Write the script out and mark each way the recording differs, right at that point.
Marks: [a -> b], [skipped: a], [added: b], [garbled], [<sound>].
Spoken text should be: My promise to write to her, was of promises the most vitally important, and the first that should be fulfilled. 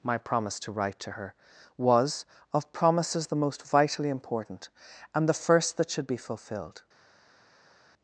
My promise to write to her, was of promises the most vitally important, and the first that should be fulfilled.